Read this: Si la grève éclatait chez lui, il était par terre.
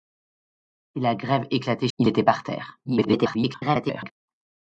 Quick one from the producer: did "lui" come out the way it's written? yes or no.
no